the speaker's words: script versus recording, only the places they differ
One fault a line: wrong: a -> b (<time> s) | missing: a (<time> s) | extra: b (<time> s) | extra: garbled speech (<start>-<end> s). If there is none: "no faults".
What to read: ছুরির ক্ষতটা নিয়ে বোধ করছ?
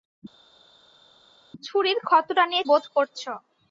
no faults